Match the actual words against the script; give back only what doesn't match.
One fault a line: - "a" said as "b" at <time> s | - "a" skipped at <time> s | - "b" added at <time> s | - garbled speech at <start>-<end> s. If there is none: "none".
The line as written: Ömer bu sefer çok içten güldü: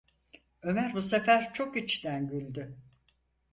none